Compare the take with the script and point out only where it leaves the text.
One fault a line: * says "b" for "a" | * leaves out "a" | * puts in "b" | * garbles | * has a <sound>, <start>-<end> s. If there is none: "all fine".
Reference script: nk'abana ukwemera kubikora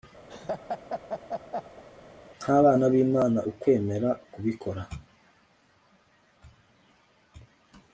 * has a laugh, 0.3-1.8 s
* puts in "b'imana"